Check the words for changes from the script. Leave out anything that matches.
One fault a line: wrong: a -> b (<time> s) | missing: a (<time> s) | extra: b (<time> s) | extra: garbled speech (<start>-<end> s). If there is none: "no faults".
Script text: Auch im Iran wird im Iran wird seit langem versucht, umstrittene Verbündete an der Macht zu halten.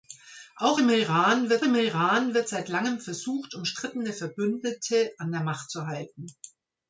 no faults